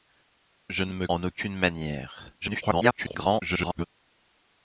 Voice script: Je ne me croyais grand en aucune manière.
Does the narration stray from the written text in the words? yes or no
yes